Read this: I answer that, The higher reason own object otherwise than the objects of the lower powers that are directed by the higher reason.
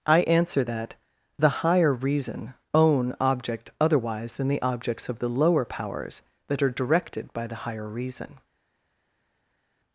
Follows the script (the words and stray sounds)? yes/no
yes